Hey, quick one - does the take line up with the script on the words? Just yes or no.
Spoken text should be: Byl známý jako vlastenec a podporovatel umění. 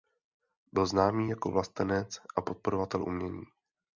yes